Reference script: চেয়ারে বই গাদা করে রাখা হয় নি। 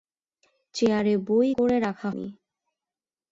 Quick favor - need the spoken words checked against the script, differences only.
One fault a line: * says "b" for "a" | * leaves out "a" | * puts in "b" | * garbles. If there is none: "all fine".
* leaves out "গাদা"
* leaves out "হয়"